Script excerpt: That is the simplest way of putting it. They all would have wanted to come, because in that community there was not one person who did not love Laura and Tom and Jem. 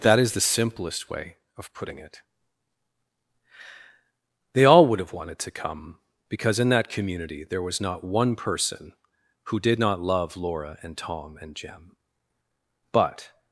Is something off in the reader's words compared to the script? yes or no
yes